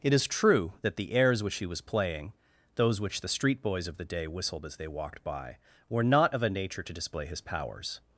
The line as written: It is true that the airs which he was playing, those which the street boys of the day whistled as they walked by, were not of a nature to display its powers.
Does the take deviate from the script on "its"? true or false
true